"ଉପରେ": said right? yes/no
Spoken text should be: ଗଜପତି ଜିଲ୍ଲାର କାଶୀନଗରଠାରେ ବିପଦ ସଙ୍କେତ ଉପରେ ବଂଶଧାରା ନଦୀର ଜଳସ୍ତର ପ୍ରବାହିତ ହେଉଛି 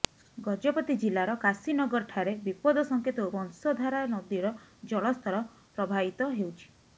no